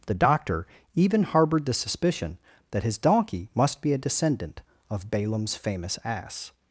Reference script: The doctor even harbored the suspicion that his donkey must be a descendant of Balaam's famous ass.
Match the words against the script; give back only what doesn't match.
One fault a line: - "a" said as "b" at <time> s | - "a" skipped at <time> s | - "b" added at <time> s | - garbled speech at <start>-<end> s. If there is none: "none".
none